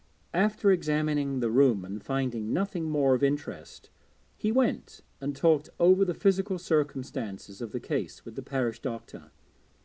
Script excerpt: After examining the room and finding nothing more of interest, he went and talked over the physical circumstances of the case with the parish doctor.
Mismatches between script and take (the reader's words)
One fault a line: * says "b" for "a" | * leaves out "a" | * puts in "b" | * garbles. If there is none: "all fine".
all fine